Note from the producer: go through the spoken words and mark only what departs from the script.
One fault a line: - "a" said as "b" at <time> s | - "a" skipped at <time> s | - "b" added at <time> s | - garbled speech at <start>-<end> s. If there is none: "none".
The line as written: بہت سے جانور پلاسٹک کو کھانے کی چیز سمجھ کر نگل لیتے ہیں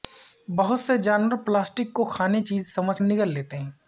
- "کی" skipped at 2.4 s
- "کر" skipped at 3.0 s